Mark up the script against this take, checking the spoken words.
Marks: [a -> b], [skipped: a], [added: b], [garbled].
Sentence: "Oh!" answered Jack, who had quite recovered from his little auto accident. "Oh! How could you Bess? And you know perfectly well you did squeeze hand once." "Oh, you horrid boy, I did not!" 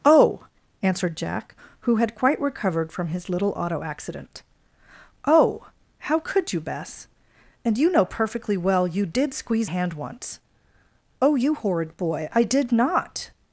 "Oh!" answered Jack, who had quite recovered from his little auto accident. "Oh! How could you Bess? And you know perfectly well you did squeeze hand once." "Oh, you horrid boy, I did not!"